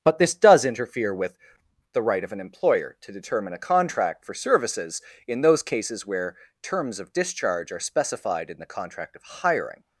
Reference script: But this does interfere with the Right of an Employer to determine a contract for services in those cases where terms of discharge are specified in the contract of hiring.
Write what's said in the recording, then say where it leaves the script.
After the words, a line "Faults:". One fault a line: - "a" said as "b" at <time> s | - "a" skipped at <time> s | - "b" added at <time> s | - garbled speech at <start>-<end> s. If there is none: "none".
But this does interfere with the Right of an Employer to determine a contract for services in those cases where terms of discharge are specified in the contract of hiring.
Faults:
none